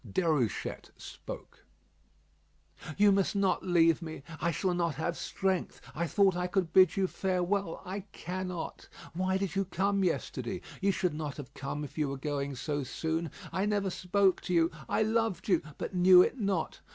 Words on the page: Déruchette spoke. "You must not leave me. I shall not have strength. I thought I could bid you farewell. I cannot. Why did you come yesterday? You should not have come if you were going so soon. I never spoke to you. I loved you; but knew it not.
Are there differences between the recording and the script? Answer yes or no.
no